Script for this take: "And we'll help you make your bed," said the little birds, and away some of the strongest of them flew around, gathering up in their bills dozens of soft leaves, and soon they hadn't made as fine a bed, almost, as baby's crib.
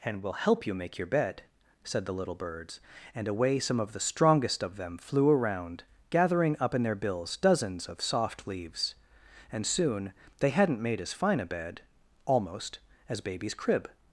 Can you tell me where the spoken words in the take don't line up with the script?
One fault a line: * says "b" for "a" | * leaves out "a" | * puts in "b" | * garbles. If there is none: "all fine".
all fine